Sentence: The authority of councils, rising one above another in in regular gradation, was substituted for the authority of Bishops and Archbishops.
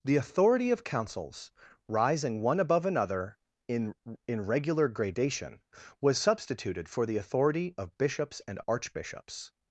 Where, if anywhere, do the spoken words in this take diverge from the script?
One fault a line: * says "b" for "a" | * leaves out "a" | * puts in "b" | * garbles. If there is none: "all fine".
all fine